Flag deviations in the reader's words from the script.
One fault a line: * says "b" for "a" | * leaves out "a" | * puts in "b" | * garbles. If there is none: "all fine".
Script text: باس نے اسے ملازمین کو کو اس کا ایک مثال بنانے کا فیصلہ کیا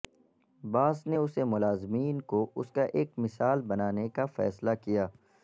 * leaves out "کو"